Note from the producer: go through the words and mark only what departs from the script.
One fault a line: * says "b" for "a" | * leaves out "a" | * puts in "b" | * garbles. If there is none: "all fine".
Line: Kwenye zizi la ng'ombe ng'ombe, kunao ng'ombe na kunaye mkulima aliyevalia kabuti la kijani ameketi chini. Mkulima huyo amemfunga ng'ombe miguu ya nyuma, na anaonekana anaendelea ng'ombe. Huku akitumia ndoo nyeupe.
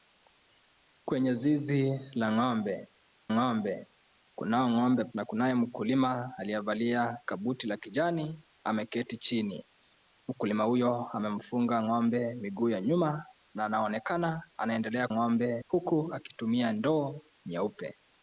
all fine